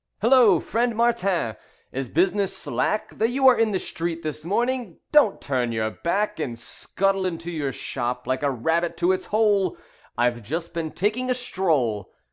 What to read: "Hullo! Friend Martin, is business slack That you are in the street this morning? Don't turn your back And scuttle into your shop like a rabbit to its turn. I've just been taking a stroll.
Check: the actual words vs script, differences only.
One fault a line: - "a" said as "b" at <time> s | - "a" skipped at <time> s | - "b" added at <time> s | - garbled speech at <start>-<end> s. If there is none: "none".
- "turn" said as "hole" at 9.3 s